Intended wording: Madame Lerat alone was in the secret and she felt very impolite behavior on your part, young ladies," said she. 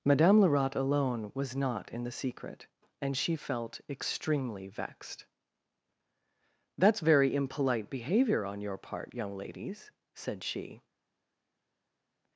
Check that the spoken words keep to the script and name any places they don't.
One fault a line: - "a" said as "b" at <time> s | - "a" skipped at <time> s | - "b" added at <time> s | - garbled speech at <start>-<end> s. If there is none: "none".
- "not" added at 1.6 s
- "extremely vexed That's" added at 3.9 s